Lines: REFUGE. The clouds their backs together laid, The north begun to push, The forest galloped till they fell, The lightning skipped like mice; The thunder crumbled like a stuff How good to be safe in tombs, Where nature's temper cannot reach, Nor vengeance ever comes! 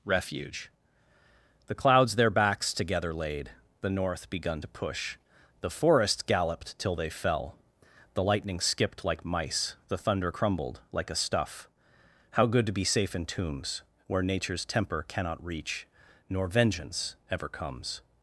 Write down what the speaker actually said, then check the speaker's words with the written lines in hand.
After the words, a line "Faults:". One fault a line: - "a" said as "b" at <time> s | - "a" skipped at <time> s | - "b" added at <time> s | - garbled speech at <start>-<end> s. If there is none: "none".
REFUGE. The clouds their backs together laid, The north begun to push, The forest galloped till they fell, The lightning skipped like mice; The thunder crumbled like a stuff How good to be safe in tombs, Where nature's temper cannot reach, Nor vengeance ever comes!
Faults:
none